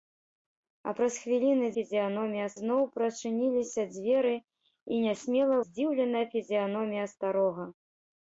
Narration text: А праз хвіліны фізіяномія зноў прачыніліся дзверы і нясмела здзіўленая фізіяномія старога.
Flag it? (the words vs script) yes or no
no